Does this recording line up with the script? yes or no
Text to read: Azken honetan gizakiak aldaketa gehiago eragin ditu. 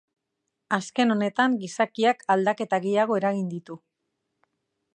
yes